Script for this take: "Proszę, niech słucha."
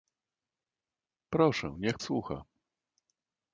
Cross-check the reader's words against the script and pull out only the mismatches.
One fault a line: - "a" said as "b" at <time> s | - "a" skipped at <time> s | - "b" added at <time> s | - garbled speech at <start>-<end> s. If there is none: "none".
none